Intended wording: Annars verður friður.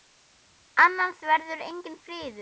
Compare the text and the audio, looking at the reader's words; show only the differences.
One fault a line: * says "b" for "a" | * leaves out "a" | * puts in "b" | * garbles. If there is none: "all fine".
* puts in "enginn"